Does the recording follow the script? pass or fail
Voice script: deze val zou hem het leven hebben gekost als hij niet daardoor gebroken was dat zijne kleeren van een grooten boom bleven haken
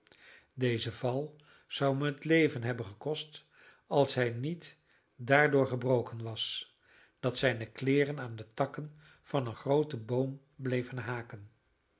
fail